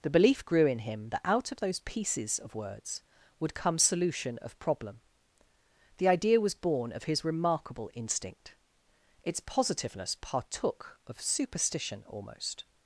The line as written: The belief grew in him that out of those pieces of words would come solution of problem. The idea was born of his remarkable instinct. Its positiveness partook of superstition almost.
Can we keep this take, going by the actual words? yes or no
yes